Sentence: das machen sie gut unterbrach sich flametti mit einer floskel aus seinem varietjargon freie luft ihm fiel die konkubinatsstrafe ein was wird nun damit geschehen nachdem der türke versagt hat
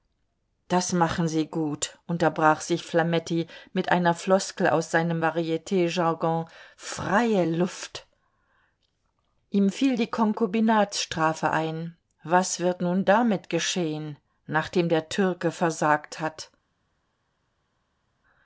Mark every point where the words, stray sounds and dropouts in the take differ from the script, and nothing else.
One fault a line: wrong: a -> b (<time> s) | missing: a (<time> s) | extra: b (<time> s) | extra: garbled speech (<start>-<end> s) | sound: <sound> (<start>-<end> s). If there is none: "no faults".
no faults